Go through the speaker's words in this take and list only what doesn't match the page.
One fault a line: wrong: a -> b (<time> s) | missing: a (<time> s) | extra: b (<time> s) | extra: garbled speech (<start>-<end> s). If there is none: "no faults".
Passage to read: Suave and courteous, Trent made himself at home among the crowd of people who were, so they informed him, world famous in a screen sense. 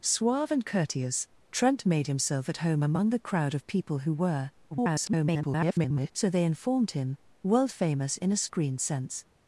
extra: garbled speech (4.7-6.1 s)